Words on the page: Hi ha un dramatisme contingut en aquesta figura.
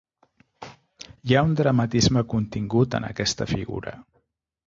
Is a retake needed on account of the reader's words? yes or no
no